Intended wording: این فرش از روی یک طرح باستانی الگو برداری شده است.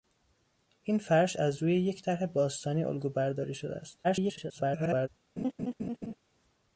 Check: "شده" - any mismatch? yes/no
no